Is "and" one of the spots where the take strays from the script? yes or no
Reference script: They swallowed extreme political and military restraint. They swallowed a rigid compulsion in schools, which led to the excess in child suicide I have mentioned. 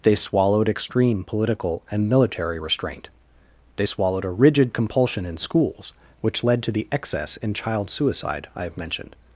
no